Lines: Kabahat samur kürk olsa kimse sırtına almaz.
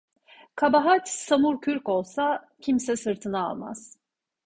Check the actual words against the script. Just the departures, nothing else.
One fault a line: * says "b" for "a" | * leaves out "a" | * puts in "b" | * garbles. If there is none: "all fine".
all fine